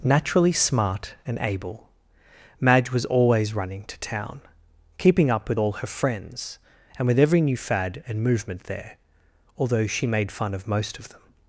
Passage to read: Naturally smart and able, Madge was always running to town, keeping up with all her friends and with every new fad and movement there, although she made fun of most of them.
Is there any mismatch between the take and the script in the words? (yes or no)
no